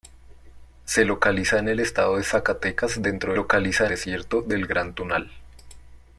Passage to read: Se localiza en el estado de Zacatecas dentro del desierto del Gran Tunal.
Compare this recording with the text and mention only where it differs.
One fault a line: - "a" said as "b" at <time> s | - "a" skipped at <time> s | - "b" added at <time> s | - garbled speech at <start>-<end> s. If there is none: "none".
- "del" said as "localiza" at 3.3 s